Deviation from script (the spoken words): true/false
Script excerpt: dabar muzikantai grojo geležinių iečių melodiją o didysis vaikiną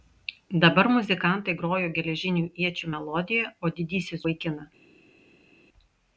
false